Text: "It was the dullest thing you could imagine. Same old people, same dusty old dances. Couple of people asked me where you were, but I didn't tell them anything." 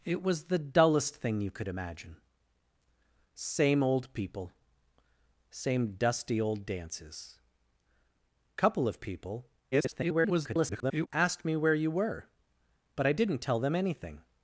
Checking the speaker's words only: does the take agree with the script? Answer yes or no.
no